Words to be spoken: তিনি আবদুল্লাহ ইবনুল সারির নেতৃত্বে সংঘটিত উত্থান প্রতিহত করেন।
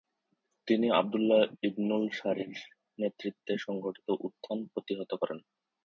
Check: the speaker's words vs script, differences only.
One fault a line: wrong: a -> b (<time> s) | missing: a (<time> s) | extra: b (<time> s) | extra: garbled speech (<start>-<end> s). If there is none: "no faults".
no faults